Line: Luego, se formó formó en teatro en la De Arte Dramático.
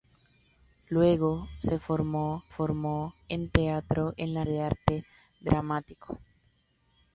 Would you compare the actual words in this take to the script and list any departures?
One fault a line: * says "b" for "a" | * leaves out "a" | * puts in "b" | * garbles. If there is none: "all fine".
all fine